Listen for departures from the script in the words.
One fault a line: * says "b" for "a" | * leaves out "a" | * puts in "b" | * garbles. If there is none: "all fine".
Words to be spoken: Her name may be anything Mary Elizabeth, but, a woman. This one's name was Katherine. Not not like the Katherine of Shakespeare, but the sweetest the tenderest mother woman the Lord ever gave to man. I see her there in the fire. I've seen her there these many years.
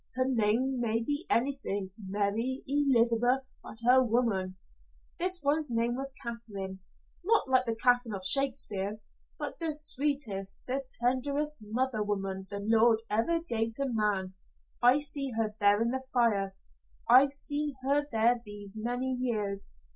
* leaves out "not"